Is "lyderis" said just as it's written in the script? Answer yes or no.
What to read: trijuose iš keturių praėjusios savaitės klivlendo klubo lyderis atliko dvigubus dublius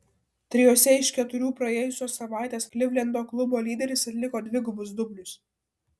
yes